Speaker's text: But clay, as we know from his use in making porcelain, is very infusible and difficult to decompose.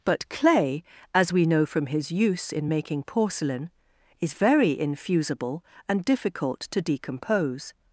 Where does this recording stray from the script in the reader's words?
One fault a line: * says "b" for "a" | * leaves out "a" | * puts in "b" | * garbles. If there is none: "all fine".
all fine